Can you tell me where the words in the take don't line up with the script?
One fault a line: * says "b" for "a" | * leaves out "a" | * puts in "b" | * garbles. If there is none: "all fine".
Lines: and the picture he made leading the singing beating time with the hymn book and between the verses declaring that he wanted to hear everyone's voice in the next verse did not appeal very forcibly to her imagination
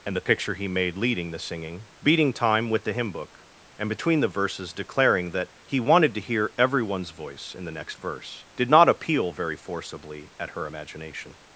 * says "at" for "to"